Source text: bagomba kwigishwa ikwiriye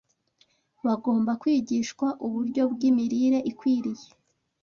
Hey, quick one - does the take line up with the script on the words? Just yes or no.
no